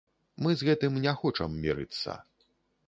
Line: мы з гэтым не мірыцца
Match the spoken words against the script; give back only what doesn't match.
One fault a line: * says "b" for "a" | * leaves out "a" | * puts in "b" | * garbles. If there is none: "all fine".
* puts in "хочам"